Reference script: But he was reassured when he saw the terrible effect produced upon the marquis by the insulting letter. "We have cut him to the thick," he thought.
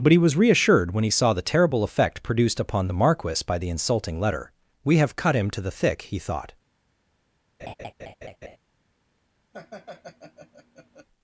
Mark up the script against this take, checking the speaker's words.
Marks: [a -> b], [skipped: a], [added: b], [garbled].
But he was reassured when he saw the terrible effect produced upon the marquis by the insulting letter. "We have cut him to the thick," he thought.